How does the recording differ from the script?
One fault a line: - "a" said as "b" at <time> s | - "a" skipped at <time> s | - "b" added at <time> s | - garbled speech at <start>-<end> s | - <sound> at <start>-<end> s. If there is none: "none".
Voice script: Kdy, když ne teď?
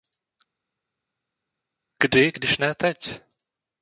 none